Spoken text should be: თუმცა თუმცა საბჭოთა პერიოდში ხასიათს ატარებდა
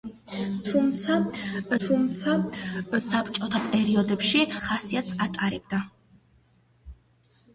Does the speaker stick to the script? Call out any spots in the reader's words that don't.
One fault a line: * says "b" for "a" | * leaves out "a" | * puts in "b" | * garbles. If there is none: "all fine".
all fine